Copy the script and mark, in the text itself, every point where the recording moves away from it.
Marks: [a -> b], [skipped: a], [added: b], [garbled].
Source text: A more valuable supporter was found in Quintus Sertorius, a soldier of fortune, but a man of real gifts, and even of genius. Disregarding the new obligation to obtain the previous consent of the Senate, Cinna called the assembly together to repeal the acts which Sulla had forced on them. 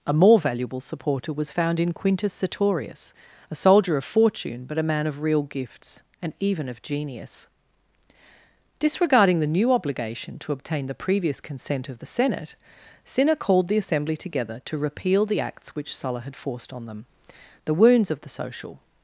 A more valuable supporter was found in Quintus Sertorius, a soldier of fortune, but a man of real gifts, and even of genius. Disregarding the new obligation to obtain the previous consent of the Senate, Cinna called the assembly together to repeal the acts which Sulla had forced on them. [added: The wounds of the social]